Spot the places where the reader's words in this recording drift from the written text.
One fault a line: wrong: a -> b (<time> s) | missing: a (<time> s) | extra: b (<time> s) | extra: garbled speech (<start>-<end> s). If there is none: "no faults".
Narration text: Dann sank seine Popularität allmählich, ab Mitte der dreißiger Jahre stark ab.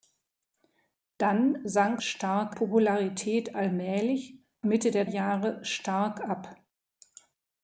wrong: seine -> stark (2.0 s)
missing: ab (4.4 s)
missing: dreißiger (5.0 s)